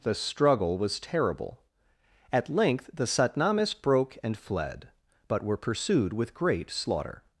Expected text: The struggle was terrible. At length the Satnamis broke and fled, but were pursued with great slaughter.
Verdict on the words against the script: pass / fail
pass